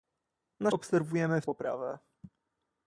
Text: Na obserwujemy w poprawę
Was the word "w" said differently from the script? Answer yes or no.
no